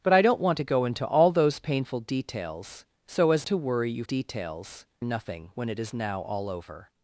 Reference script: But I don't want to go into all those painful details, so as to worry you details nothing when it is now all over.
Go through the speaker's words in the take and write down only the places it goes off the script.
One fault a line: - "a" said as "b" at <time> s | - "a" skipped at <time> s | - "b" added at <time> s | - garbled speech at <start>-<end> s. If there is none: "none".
none